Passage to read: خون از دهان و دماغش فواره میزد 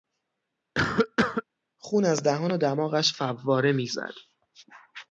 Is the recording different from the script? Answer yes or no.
no